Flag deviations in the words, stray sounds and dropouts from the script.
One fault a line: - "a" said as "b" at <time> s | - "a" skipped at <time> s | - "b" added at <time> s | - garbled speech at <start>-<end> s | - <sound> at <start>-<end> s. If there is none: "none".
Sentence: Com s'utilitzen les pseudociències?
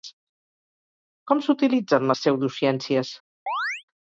- chirp at 3.5-3.8 s